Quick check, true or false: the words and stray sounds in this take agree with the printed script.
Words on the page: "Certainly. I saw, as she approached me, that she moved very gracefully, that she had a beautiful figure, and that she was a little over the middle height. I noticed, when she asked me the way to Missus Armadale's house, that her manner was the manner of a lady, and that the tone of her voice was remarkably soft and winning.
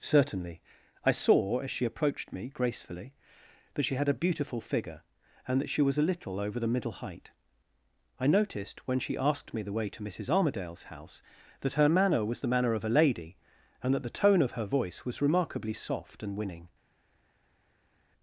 false